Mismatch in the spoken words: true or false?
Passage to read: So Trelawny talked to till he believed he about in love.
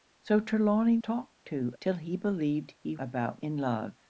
false